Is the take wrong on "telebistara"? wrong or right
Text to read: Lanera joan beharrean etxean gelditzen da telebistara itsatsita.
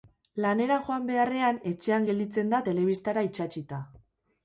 right